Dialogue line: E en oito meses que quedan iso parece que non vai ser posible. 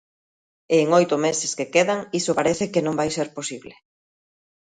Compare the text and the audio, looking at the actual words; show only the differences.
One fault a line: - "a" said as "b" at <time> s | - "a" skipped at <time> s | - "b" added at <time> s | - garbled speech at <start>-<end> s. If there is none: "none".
none